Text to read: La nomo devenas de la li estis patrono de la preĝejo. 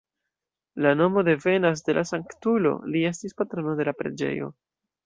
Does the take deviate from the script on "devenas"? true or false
false